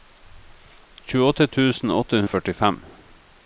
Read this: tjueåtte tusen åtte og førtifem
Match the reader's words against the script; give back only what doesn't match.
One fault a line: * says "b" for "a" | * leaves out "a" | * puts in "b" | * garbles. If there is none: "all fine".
all fine